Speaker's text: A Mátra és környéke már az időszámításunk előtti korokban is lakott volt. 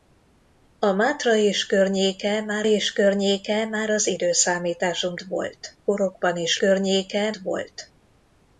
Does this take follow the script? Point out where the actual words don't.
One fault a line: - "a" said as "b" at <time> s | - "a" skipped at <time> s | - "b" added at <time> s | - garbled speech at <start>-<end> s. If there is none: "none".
- "és környéke már" added at 2.6 s
- "előtti" said as "volt" at 5.2 s
- "lakott" said as "környéke" at 6.6 s